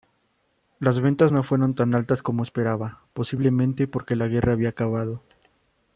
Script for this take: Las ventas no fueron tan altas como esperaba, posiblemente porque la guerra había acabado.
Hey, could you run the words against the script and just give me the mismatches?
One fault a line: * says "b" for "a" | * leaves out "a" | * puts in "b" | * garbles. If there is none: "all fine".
all fine